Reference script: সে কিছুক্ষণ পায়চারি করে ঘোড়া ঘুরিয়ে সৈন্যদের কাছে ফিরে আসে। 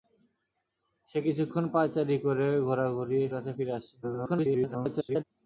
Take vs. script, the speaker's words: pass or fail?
fail